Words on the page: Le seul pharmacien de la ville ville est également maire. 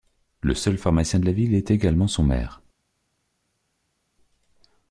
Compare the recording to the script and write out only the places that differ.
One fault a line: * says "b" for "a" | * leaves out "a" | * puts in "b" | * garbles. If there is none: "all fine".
* leaves out "ville"
* puts in "son"